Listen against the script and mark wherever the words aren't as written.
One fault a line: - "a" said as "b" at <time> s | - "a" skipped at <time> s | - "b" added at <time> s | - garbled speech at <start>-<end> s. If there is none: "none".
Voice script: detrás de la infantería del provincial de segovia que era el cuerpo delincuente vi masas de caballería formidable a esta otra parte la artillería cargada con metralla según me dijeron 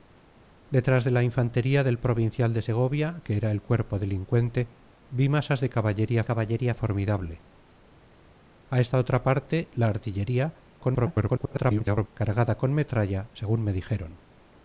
- "caballería" added at 6.2 s
- garbled speech at 10.8-12.1 s